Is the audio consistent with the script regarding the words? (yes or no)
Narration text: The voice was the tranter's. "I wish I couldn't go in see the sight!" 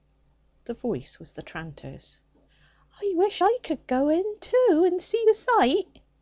no